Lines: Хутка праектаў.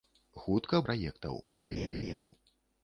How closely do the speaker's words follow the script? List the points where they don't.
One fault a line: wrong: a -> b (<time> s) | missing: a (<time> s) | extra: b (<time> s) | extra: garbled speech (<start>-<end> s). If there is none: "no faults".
no faults